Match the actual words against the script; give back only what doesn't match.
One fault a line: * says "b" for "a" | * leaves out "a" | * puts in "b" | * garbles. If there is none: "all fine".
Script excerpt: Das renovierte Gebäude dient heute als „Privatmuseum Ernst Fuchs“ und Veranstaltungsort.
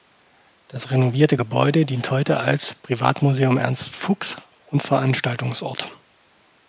all fine